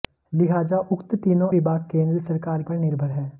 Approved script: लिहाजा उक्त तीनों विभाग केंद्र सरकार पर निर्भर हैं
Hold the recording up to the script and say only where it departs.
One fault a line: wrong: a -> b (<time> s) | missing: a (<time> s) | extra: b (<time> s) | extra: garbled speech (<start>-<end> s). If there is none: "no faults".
no faults